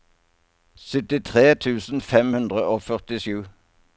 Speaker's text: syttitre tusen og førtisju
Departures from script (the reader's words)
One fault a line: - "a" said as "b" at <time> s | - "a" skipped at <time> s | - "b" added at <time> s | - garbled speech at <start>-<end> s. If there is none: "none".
- "fem hundre" added at 2.1 s